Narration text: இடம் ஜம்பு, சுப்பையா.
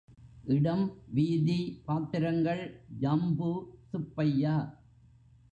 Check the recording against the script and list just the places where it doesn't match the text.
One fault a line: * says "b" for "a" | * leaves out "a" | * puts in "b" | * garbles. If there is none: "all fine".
* puts in "வீதி பாத்திரங்கள்"